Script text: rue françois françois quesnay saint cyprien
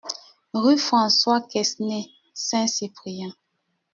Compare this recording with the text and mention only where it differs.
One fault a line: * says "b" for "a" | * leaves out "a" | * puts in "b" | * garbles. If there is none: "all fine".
* leaves out "françois"